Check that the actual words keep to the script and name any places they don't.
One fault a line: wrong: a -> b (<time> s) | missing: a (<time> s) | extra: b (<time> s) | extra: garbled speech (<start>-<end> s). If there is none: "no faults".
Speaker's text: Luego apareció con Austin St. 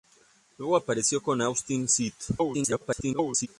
extra: garbled speech (2.4-3.5 s)